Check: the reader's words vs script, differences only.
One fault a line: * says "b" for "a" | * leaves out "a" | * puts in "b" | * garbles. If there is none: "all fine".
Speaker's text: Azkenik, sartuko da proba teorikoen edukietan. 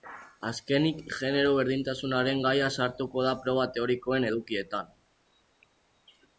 * puts in "genero berdintasunaren gaia"